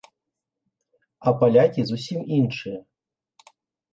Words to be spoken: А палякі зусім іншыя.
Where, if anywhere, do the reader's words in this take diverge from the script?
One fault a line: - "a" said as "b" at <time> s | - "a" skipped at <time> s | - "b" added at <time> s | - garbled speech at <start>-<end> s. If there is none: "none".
none